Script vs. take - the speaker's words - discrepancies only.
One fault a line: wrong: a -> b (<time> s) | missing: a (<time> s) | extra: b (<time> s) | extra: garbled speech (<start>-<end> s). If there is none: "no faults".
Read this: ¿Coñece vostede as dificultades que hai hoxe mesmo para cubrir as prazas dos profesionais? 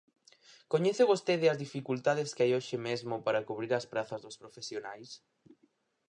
no faults